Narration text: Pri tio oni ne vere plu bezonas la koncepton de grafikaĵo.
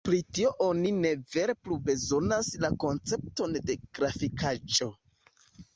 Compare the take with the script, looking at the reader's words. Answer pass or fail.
pass